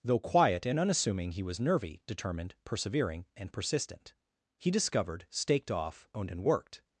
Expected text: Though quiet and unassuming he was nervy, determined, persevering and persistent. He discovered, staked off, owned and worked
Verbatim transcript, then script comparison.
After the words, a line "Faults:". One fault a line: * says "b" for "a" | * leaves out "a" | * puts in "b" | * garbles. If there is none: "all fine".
Though quiet and unassuming he was nervy, determined, persevering and persistent. He discovered, staked off, owned and worked
Faults:
all fine